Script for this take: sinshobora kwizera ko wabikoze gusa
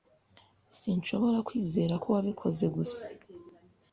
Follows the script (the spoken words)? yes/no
yes